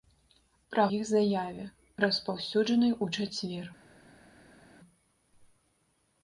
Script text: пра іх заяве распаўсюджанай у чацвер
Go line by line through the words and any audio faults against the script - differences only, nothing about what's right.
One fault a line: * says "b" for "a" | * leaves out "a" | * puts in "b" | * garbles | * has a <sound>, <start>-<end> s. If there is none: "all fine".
all fine